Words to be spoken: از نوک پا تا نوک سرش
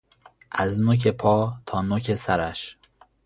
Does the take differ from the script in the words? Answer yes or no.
no